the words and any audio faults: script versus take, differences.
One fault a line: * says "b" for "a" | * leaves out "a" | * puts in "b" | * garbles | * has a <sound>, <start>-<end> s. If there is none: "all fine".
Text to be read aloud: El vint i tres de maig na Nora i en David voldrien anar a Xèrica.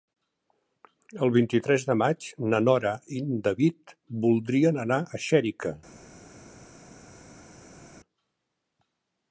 all fine